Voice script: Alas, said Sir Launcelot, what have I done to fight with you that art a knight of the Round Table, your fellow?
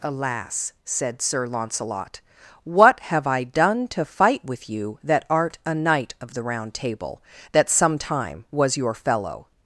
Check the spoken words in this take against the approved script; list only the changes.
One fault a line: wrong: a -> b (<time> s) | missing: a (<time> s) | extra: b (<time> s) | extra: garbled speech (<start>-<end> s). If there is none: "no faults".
extra: that sometime was (7.5 s)